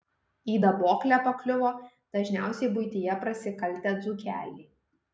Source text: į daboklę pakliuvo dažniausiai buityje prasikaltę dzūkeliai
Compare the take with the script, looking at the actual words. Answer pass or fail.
pass